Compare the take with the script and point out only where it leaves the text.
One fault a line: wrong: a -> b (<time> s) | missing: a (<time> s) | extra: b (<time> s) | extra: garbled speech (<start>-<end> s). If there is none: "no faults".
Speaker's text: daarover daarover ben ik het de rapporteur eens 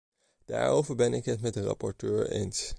missing: daarover (0.9 s)
extra: met (1.4 s)